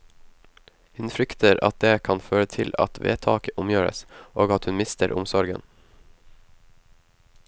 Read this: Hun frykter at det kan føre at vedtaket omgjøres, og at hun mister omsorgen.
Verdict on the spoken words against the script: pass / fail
fail